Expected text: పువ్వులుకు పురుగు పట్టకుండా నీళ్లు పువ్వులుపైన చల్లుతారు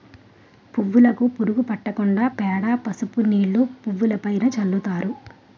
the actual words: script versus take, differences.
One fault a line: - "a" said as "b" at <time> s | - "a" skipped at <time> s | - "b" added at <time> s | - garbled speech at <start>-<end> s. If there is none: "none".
- "పేడ పసుపు" added at 2.4 s